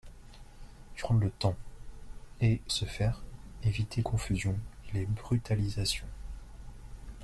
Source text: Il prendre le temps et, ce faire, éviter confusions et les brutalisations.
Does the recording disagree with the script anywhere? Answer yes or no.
no